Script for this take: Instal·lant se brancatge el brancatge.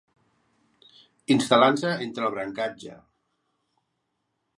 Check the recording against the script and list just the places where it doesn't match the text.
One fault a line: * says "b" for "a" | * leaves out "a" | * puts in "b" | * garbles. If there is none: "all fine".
* says "entre" for "brancatge"